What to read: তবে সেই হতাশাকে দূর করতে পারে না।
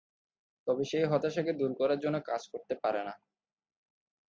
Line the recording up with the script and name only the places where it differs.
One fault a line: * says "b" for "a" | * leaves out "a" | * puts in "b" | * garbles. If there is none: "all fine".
* puts in "করার জন্য কাজ"